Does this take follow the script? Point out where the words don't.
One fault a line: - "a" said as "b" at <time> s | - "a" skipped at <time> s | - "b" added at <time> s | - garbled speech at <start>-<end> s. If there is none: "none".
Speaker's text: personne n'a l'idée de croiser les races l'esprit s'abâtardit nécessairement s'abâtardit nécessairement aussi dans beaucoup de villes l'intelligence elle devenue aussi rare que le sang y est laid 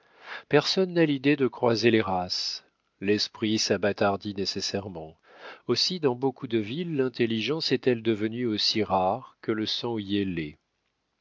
- "s'abâtardit nécessairement" skipped at 5.2 s
- "est" added at 7.7 s